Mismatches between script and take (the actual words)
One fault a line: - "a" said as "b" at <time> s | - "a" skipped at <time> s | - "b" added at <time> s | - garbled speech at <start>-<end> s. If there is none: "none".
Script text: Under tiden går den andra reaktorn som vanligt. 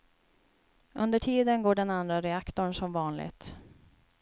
none